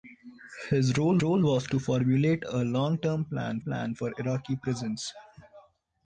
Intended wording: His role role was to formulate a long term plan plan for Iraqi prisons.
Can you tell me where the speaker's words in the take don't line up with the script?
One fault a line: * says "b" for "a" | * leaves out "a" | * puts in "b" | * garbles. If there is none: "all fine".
all fine